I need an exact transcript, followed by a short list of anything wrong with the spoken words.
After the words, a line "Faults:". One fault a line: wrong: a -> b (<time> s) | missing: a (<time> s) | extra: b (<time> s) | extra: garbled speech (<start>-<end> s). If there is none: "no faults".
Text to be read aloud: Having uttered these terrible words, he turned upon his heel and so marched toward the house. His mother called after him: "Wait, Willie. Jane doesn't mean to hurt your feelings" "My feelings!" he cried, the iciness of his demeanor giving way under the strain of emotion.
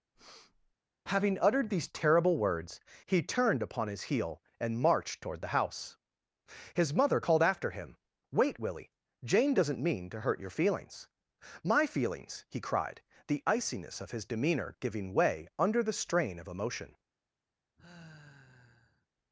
Having uttered these terrible words, he turned upon his heel and marched toward the house. His mother called after him: "Wait, Willie. Jane doesn't mean to hurt your feelings" "My feelings!" he cried, the iciness of his demeanor giving way under the strain of emotion.
Faults:
missing: so (4.8 s)